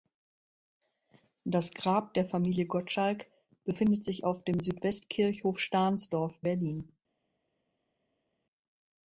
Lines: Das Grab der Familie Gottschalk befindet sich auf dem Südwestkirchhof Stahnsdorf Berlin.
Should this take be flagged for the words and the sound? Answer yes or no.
no